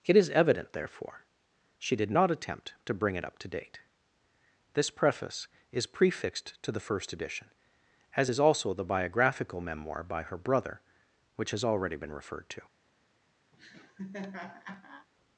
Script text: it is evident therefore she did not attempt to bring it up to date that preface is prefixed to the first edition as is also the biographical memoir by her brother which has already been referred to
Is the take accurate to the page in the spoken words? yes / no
no